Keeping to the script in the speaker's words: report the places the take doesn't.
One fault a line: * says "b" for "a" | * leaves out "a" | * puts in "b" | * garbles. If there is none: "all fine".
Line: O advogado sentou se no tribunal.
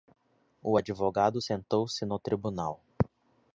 all fine